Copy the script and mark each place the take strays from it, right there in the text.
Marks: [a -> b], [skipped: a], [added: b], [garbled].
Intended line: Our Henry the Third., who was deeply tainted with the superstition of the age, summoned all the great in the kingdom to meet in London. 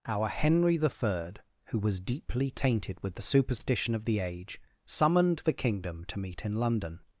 Our Henry the Third., who was deeply tainted with the superstition of the age, summoned [skipped: all the great in] the kingdom to meet in London.